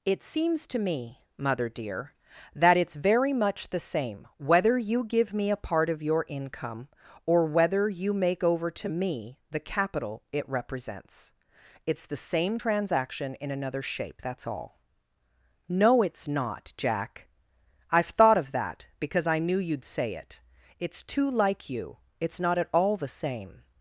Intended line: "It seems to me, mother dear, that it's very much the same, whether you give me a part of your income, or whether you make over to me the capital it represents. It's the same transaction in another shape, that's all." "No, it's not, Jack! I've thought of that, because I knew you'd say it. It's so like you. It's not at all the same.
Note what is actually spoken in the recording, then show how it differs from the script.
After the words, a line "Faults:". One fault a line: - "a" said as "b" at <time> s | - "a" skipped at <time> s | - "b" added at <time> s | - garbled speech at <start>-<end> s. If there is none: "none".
"It seems to me, mother dear, that it's very much the same, whether you give me a part of your income, or whether you make over to me the capital it represents. It's the same transaction in another shape, that's all." "No, it's not, Jack! I've thought of that, because I knew you'd say it. It's too like you. It's not at all the same.
Faults:
- "so" said as "too" at 21.0 s